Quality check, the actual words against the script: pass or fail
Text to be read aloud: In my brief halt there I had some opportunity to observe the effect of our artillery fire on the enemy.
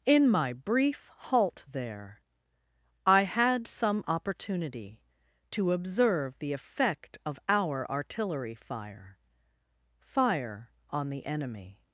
fail